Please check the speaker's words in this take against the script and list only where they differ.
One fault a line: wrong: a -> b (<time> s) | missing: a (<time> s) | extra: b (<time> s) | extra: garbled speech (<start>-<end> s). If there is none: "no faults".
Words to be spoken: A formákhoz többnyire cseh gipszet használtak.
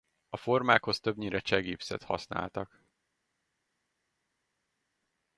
no faults